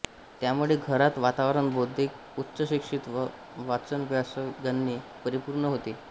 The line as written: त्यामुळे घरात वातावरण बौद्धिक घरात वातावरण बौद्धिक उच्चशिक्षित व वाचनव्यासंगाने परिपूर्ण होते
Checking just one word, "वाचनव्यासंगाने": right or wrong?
right